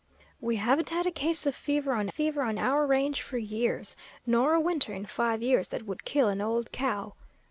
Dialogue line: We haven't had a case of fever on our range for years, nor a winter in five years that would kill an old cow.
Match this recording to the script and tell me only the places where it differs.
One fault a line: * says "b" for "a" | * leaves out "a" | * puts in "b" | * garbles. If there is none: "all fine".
* puts in "fever on"